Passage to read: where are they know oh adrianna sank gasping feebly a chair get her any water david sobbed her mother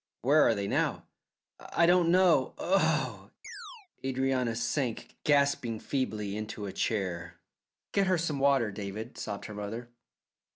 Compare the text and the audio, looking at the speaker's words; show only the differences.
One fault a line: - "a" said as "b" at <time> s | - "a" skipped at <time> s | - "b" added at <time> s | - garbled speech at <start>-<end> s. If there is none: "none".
- "now i don't" added at 0.7 s
- "into" added at 6.4 s
- "any" said as "some" at 8.2 s